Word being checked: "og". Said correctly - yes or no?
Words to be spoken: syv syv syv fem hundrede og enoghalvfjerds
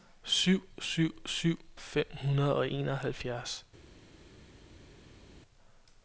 yes